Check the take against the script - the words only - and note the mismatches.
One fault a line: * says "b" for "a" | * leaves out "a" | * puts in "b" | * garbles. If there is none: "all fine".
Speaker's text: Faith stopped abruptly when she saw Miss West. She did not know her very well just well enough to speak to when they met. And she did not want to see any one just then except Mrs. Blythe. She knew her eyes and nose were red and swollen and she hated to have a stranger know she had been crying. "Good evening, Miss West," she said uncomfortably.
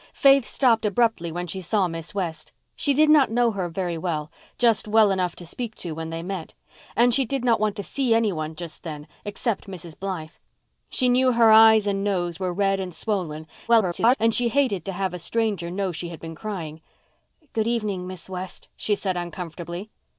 * garbles